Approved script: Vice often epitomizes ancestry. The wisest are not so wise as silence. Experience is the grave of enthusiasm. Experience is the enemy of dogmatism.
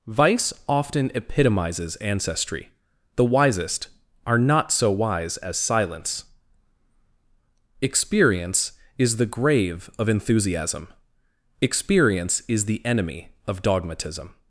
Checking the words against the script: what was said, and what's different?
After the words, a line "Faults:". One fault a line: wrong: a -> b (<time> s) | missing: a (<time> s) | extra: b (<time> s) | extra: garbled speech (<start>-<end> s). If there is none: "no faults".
Vice often epitomizes ancestry. The wisest are not so wise as silence. Experience is the grave of enthusiasm. Experience is the enemy of dogmatism.
Faults:
no faults